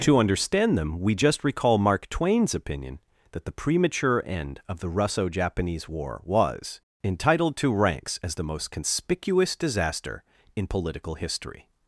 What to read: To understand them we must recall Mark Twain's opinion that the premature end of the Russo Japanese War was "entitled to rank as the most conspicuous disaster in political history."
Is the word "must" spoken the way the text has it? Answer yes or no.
no